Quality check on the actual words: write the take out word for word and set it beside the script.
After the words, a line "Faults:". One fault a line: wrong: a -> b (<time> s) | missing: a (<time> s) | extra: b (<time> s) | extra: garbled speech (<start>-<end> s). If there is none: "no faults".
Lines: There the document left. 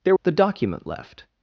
There the document left.
Faults:
no faults